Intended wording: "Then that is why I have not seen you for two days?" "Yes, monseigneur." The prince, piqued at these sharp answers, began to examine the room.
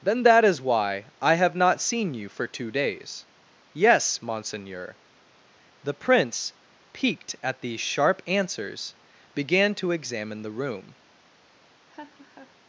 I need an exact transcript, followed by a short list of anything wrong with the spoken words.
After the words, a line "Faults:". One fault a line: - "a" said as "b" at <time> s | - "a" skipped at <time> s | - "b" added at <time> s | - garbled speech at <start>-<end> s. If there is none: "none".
"Then that is why I have not seen you for two days?" "Yes, monseigneur." The prince, piqued at these sharp answers, began to examine the room.
Faults:
none